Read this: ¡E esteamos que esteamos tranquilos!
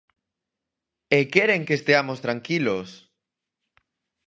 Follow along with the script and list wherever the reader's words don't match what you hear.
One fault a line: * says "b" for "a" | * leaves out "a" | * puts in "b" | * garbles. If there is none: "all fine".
* says "queren" for "esteamos"